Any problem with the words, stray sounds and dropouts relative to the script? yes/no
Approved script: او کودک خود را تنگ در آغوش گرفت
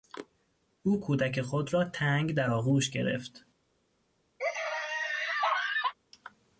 yes